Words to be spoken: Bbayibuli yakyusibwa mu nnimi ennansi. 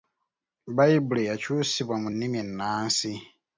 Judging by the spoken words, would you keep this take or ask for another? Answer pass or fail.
pass